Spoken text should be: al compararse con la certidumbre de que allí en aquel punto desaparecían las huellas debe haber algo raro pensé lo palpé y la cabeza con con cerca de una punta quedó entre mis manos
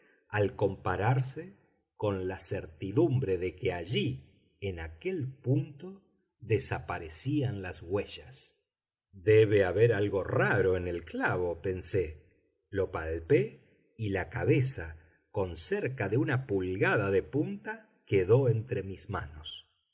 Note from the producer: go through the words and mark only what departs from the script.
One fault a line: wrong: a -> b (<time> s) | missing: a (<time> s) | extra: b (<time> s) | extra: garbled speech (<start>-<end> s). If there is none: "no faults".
extra: en el clavo (10.8 s)
missing: con (15.6 s)
extra: pulgada de (16.5 s)